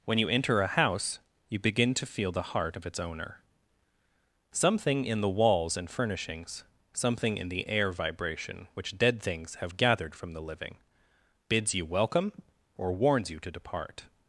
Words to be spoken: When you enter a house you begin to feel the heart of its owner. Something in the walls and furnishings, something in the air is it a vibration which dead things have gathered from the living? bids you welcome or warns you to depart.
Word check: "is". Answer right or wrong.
wrong